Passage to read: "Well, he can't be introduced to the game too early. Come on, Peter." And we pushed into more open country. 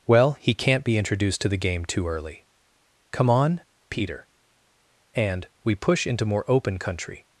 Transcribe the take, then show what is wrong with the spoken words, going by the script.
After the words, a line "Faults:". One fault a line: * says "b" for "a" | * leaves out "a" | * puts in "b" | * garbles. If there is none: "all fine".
"Well, he can't be introduced to the game too early. Come on, Peter." And we push into more open country.
Faults:
* says "push" for "pushed"